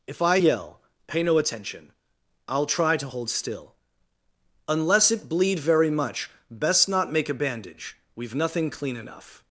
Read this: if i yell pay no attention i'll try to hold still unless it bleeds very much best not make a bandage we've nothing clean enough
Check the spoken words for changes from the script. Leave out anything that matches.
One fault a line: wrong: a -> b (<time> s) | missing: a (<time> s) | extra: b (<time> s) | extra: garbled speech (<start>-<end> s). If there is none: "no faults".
wrong: bleeds -> bleed (5.3 s)